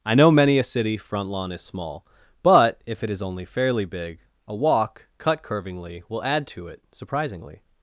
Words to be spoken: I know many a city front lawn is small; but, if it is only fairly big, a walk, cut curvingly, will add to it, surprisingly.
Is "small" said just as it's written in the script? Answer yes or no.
yes